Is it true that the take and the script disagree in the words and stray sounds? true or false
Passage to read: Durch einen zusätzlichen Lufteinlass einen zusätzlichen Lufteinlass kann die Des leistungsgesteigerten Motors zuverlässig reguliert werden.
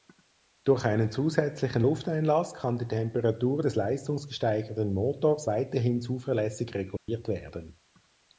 true